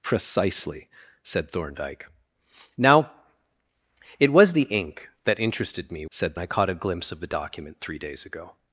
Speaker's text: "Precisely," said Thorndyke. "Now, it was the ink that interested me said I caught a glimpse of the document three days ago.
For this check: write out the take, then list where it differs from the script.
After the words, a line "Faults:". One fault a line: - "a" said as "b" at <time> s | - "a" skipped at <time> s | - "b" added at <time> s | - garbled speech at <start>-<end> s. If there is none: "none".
"Precisely," said Thorndyke. "Now, it was the ink that interested me said I caught a glimpse of the document three days ago.
Faults:
none